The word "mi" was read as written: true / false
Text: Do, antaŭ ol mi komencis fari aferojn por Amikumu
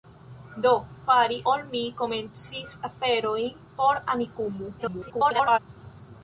true